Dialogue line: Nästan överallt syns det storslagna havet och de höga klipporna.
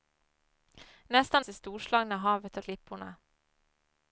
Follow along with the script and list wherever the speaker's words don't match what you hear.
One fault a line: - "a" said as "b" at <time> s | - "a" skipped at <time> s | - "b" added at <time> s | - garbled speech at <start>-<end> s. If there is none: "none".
- "överallt syns" skipped at 1.4 s
- "de höga" skipped at 2.6 s